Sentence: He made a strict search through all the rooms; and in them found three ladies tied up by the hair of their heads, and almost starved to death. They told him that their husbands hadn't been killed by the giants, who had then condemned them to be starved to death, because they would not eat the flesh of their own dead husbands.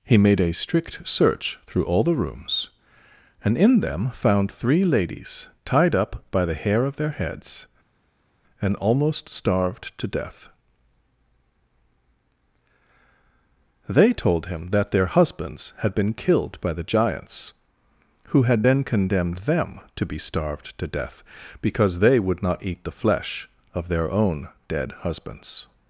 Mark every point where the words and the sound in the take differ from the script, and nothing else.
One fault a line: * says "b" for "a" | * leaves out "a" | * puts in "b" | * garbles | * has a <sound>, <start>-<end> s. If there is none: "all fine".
* says "had" for "hadn't"